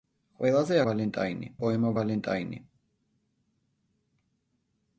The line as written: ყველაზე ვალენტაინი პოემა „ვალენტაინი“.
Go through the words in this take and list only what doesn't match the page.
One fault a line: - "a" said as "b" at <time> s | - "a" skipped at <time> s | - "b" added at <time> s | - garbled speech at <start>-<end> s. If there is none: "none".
none